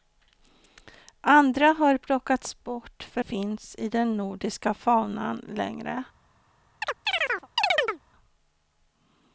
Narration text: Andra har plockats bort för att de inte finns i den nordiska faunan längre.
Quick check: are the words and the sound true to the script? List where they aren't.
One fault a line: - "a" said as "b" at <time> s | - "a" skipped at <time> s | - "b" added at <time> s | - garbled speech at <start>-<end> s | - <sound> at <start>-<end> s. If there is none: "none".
- "att de inte" skipped at 3.2 s
- chirp at 6.8-8.0 s